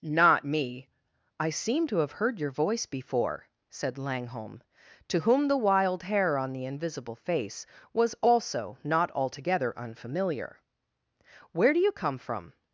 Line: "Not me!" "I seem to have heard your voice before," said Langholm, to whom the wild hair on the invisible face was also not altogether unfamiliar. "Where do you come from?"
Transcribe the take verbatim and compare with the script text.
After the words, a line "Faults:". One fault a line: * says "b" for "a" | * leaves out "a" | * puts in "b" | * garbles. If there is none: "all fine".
"Not me!" "I seem to have heard your voice before," said Langholm, to whom the wild hair on the invisible face was also not altogether unfamiliar. "Where do you come from?"
Faults:
all fine